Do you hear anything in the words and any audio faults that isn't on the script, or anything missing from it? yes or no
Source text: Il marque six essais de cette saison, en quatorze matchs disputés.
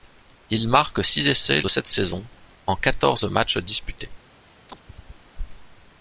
yes